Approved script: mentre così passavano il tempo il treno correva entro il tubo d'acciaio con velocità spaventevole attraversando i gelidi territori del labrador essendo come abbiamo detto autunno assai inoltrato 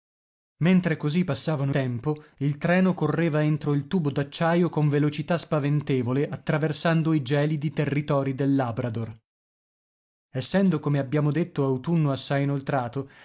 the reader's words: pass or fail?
fail